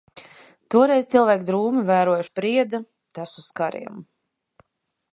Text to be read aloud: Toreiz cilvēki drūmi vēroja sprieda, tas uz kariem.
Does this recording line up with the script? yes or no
yes